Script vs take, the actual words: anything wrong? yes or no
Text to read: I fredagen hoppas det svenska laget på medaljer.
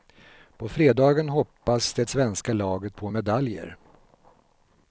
yes